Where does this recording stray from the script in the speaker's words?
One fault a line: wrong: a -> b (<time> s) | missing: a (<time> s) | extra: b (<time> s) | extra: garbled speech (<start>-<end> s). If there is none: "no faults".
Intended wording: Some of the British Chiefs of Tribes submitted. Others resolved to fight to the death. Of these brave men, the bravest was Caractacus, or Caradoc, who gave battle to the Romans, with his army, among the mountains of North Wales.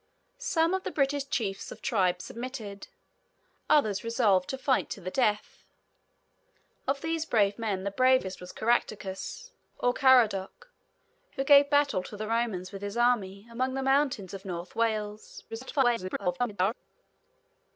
extra: garbled speech (15.5-16.7 s)